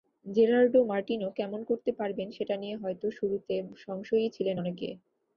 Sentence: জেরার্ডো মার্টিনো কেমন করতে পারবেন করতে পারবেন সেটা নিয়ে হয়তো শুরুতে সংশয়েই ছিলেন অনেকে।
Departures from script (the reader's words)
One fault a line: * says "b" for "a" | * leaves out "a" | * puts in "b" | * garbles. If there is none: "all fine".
* leaves out "করতে পারবেন"